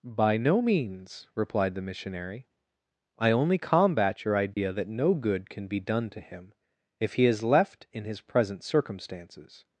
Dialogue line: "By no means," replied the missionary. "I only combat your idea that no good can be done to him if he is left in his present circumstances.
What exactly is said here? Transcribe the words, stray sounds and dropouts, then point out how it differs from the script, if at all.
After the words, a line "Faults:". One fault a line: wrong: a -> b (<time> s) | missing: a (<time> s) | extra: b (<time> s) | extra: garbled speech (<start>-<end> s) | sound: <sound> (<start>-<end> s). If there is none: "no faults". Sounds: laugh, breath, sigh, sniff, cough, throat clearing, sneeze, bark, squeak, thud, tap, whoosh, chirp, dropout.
"By no means," replied the missionary. "I only combat your idea that no good can be done to him if he is left in his present circumstances.
Faults:
sound: dropout (4.5-4.6 s)